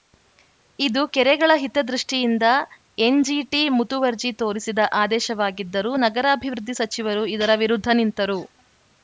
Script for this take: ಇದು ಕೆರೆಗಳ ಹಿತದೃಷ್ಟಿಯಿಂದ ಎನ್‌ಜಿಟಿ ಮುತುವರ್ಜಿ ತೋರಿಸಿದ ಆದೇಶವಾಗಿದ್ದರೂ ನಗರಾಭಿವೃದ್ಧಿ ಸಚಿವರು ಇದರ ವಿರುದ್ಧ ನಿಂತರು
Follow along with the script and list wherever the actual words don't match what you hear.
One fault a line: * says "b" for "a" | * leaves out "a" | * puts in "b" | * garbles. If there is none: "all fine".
all fine